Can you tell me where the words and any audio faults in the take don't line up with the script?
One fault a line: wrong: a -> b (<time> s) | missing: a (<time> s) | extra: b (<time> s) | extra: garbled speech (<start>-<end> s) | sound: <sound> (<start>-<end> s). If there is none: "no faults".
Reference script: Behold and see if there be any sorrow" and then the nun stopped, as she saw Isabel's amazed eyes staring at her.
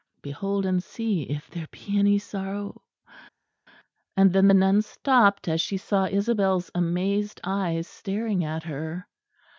no faults